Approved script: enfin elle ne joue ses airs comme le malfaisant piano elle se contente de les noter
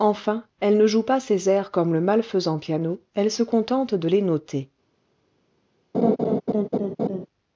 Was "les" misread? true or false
false